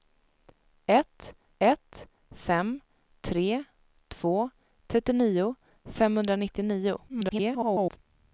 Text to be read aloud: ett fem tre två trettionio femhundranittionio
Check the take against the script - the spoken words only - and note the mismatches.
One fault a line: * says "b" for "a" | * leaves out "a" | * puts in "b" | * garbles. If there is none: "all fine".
* puts in "ett"
* garbles